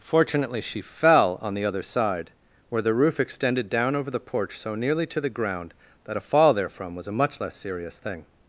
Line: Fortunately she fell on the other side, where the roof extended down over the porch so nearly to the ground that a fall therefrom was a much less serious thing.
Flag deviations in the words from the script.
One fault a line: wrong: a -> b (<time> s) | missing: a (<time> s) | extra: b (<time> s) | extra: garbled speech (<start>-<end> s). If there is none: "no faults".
no faults